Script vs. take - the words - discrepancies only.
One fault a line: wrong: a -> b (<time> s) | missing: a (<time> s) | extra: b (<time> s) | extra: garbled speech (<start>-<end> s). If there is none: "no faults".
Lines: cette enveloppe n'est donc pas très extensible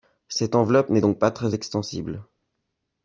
no faults